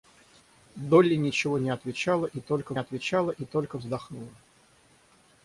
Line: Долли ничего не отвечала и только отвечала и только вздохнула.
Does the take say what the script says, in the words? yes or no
yes